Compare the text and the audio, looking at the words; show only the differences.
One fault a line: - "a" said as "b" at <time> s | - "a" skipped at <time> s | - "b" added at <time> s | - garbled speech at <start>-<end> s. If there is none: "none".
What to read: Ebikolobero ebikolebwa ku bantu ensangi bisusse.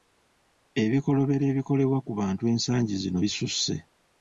- "zino" added at 3.0 s